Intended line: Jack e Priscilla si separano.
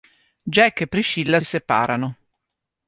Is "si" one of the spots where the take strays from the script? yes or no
yes